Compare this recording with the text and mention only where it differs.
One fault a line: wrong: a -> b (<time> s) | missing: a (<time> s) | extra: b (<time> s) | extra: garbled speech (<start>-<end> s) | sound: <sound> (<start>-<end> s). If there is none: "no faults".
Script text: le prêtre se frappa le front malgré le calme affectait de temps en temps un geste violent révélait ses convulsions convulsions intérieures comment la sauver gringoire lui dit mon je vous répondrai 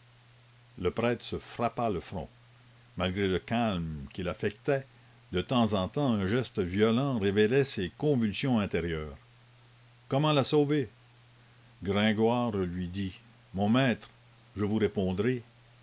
extra: qu'il (4.1 s)
missing: convulsions (8.6 s)
extra: maître (13.7 s)